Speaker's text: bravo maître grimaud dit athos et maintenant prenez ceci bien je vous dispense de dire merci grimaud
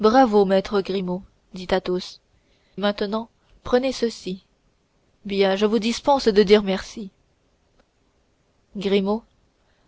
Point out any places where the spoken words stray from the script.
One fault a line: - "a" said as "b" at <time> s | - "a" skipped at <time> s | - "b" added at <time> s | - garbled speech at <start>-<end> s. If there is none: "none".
- "et" skipped at 2.2 s